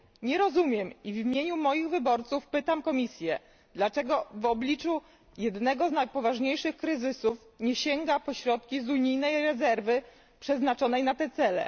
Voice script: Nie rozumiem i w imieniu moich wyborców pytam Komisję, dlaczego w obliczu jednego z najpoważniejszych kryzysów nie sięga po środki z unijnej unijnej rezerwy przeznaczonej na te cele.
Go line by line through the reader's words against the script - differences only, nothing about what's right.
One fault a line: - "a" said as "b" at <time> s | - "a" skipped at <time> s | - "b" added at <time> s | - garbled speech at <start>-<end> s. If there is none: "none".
- "unijnej" skipped at 9.4 s